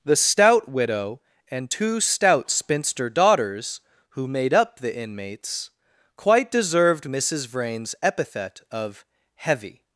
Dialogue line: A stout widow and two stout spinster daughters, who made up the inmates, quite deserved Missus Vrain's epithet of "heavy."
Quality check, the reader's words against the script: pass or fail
fail